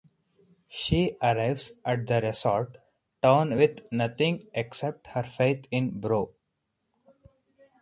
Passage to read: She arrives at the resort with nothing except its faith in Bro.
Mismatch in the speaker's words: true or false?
true